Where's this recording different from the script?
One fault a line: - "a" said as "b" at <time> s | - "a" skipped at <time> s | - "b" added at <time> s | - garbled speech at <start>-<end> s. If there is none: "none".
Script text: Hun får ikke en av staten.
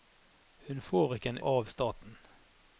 none